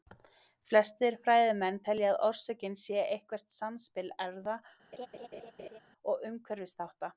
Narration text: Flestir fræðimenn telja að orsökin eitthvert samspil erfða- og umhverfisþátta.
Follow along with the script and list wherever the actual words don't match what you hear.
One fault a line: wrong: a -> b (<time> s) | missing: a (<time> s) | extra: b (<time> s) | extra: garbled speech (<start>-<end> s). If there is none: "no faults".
extra: sé (2.8 s)